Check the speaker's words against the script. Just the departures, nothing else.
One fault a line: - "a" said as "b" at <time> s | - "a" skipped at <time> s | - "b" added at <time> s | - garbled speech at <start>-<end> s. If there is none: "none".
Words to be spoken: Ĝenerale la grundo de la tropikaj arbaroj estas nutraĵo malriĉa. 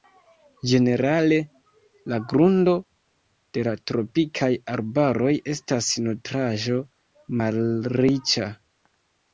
none